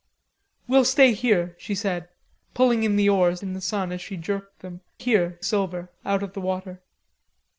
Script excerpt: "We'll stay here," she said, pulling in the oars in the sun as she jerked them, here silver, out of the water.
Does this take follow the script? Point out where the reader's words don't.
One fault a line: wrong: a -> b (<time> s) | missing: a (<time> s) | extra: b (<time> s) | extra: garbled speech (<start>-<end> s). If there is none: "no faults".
no faults